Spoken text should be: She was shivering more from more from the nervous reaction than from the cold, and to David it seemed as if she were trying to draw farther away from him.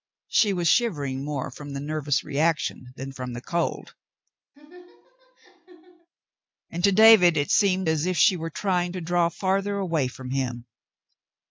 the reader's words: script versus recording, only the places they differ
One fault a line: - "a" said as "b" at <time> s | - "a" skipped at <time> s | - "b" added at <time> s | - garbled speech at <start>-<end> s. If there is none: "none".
- "more from" skipped at 1.7 s